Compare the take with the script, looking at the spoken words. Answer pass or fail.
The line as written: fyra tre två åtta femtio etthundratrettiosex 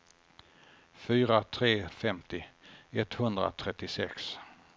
fail